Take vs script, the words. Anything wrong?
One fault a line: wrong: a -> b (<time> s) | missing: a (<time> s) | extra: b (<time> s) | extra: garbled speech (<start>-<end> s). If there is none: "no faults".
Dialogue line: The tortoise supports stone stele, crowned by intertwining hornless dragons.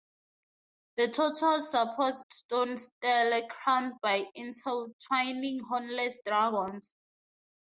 no faults